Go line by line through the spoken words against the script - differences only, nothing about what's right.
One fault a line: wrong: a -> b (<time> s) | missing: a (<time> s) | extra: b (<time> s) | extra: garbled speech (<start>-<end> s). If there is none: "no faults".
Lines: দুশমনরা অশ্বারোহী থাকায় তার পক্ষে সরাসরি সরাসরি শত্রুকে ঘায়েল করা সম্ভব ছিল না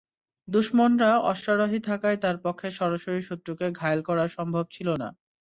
missing: সরাসরি (3.2 s)